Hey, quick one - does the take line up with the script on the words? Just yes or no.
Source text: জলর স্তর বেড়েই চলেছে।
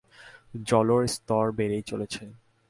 yes